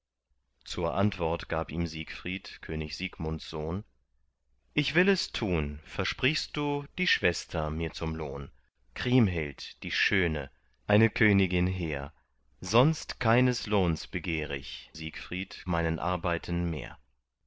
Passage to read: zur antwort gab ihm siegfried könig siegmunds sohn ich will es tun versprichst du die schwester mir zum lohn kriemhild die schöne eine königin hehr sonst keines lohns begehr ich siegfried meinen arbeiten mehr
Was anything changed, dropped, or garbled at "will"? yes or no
no